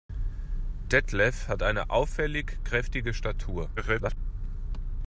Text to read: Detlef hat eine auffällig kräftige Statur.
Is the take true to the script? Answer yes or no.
no